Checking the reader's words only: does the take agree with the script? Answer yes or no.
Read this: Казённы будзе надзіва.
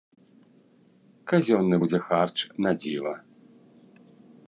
no